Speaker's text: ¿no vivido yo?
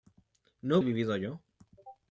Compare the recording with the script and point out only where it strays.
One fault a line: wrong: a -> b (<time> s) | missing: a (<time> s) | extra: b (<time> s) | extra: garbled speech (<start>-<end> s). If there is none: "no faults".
no faults